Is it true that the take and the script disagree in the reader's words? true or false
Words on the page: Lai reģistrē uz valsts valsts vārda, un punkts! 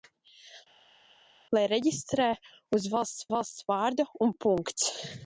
false